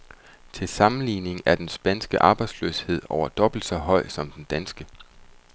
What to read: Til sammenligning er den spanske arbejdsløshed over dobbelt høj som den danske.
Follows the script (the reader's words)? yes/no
no